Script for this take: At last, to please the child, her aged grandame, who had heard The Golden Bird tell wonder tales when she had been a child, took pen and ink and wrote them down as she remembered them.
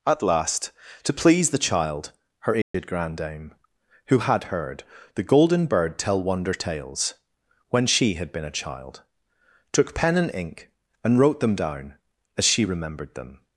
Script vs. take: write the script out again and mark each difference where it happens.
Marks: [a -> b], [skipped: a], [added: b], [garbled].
At last, to please the child, her aged grandame, who had heard The Golden Bird tell wonder tales when she had been a child, took pen and ink and wrote them down as she remembered them.